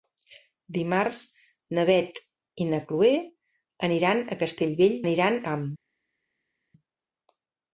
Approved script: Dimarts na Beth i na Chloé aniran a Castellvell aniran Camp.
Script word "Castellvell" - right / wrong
right